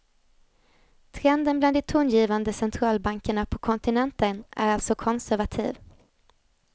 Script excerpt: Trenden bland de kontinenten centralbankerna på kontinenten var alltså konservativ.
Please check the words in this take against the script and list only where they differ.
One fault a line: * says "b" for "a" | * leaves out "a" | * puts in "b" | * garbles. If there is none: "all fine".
* says "tongivande" for "kontinenten"
* says "är" for "var"